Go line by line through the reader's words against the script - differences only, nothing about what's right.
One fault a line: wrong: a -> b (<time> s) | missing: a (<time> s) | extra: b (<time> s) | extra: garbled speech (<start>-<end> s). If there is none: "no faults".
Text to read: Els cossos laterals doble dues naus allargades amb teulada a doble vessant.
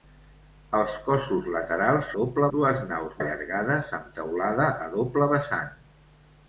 no faults